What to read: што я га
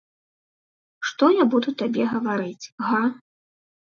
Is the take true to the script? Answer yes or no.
no